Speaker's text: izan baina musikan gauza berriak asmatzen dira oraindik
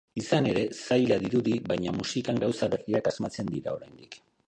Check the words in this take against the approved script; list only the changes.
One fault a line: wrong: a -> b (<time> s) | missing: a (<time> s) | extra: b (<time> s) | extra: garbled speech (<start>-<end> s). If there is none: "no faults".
extra: ere zaila dirudi (0.5 s)